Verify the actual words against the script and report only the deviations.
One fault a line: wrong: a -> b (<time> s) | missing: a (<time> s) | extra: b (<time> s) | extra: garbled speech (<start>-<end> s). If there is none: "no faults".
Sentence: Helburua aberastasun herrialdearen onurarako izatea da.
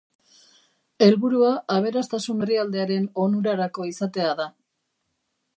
no faults